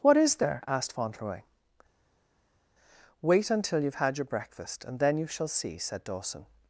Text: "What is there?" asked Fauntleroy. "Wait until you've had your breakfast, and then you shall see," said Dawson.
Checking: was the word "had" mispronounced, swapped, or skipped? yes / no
no